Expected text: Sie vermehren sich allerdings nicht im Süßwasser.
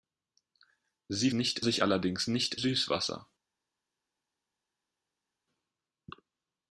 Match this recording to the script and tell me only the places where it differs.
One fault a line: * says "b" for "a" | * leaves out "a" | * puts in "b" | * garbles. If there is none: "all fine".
* says "nicht" for "vermehren"
* leaves out "im"